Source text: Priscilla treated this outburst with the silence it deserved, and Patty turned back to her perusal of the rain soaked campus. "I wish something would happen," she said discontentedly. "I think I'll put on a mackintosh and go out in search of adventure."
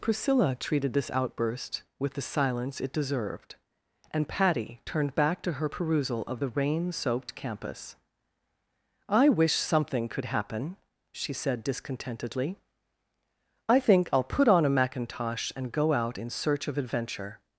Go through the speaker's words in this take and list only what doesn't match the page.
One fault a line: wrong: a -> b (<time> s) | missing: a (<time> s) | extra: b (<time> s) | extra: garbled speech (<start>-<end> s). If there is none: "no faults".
wrong: would -> could (10.1 s)